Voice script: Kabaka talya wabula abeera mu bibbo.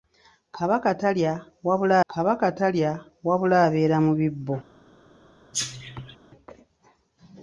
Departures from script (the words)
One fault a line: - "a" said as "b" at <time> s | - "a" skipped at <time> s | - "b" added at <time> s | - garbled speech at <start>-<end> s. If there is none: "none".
- "kabaka talya wabula" added at 2.1 s